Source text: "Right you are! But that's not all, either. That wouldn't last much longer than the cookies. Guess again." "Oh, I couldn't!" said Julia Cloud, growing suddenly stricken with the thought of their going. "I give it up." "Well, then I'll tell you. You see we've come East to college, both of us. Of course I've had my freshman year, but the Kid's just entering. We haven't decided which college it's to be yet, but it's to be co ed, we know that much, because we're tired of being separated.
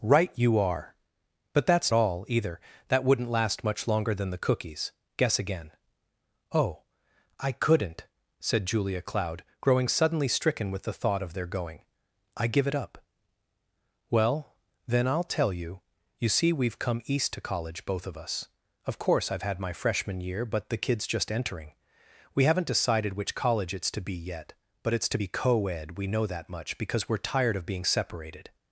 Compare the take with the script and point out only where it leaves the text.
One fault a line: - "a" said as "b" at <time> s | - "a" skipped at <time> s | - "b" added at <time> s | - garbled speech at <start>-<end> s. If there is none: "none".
- "not" skipped at 1.9 s